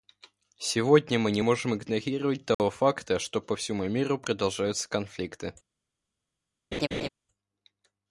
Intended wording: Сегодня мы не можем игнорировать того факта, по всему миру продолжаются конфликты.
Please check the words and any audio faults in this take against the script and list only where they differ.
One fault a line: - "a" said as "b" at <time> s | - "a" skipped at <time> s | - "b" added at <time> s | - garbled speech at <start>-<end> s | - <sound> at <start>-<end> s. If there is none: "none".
- dropout at 2.5-2.6 s
- "что" added at 3.2 s
- laugh at 6.7-7.1 s